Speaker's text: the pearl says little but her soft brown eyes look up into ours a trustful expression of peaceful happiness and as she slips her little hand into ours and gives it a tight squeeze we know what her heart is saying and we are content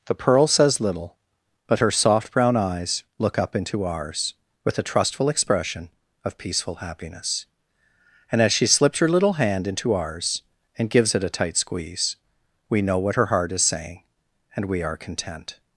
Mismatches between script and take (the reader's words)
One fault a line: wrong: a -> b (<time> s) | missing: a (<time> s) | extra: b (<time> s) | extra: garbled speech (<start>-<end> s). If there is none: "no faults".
extra: with (4.6 s)